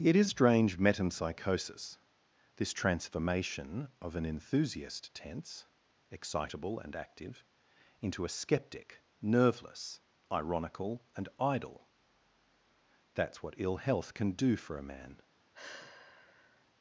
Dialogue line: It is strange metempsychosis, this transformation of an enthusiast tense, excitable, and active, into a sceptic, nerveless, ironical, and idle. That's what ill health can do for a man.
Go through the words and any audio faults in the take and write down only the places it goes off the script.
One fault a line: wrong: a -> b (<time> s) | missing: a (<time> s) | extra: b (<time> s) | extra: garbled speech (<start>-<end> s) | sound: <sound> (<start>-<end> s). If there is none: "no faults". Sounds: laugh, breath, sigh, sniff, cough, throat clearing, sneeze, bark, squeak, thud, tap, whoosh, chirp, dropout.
sound: sigh (15.5-16.7 s)